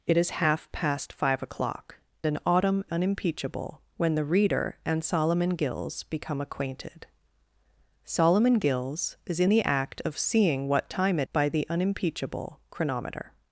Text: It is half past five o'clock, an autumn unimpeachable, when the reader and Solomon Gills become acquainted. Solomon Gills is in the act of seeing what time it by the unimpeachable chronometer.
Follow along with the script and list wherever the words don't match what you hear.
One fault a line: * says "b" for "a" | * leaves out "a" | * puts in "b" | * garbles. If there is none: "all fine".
all fine